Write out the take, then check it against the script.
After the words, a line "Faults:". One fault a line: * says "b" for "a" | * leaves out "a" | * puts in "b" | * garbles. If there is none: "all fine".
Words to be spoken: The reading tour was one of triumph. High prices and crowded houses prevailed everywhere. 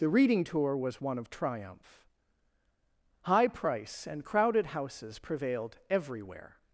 The reading tour was one of triumph. High price and crowded houses prevailed everywhere.
Faults:
* says "price" for "prices"